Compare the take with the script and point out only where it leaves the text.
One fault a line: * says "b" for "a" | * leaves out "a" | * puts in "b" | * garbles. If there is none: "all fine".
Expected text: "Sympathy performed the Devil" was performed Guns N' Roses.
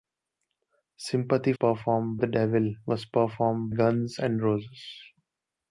all fine